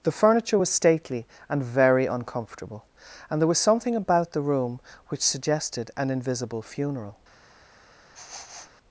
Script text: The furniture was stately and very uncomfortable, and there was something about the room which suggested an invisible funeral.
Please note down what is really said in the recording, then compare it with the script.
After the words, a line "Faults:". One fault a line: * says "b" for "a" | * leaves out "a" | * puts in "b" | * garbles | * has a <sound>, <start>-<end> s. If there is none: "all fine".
The furniture was stately and very uncomfortable, and there was something about the room which suggested an invisible funeral.
Faults:
* has a sniff, 8.1-8.7 s